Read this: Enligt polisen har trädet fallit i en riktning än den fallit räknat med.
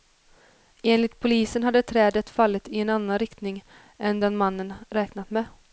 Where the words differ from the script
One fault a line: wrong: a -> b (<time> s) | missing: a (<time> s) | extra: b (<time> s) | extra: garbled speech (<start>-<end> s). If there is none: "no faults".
wrong: har -> hade (1.6 s)
extra: annan (2.9 s)
wrong: fallit -> mannen (4.4 s)